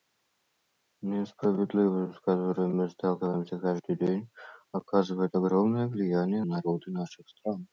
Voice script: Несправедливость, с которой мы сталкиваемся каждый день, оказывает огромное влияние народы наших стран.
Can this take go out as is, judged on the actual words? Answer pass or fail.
pass